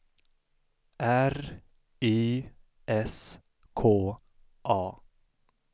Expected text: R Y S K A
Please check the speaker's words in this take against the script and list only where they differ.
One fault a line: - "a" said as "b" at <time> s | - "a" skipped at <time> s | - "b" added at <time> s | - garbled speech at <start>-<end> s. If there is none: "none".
none